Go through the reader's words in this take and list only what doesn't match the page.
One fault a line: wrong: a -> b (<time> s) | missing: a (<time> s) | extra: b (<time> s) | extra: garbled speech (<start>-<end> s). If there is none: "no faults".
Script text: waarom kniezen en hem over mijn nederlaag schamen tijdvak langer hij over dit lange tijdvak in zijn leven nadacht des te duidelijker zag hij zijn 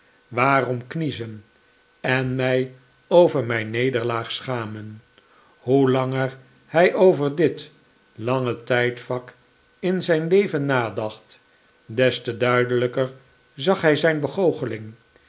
wrong: hem -> mij (2.4 s)
wrong: tijdvak -> hoe (5.6 s)